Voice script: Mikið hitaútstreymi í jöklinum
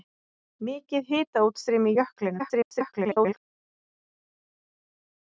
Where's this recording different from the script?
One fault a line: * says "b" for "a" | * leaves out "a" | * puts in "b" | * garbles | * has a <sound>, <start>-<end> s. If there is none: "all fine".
* garbles